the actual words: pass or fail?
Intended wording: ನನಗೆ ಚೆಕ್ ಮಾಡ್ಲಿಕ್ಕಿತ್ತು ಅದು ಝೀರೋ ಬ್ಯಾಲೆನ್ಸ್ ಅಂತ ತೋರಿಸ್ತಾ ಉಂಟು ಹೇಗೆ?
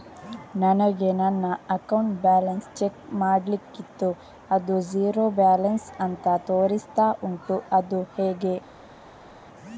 fail